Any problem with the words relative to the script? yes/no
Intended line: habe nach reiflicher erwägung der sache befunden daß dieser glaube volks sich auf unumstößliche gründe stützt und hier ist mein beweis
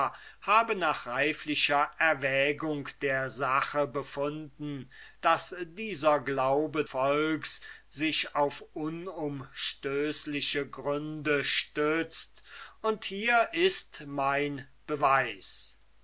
no